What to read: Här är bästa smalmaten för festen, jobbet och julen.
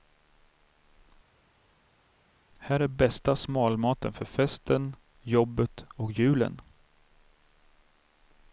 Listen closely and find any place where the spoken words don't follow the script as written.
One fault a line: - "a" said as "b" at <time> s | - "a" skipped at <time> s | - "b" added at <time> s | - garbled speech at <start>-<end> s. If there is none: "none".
none